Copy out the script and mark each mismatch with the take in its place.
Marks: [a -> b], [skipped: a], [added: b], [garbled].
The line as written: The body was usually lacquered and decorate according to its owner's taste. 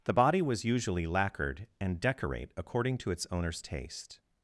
The body was usually lacquered and decorate according to its owner's taste.